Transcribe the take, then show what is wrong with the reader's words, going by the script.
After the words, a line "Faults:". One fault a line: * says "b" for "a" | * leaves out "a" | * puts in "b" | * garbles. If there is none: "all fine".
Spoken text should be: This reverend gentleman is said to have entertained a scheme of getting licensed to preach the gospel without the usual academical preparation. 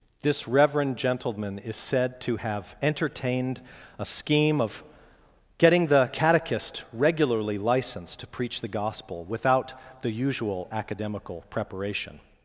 This reverend gentleman is said to have entertained a scheme of getting the catechist regularly licensed to preach the gospel without the usual academical preparation.
Faults:
* puts in "the catechist regularly"